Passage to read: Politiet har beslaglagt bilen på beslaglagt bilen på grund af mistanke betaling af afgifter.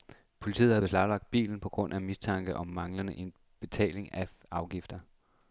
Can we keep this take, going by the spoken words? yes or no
no